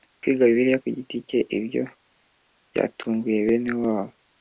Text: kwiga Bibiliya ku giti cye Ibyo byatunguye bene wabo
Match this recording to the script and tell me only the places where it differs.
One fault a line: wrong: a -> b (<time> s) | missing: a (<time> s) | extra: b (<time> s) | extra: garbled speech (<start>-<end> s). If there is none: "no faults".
no faults